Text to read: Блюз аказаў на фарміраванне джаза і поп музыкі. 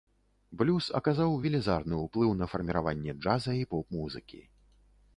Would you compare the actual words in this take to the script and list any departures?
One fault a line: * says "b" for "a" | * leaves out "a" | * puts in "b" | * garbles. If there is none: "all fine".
* puts in "велізарны ўплыў"